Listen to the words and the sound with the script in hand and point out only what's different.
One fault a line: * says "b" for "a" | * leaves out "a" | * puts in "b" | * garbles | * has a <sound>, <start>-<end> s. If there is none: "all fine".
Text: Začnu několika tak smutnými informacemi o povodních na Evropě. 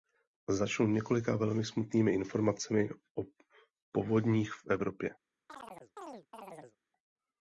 * says "velmi" for "tak"
* says "v" for "na"
* has a chirp, 5.5-6.8 s